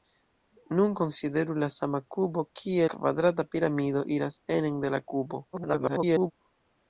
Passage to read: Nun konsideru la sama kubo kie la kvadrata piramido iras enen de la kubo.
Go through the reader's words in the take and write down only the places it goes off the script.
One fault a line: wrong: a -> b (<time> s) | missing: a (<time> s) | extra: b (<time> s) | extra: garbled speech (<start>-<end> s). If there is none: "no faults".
missing: la (2.9 s)
extra: garbled speech (5.5-6.3 s)